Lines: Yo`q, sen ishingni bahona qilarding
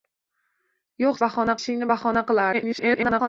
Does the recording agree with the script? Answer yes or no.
no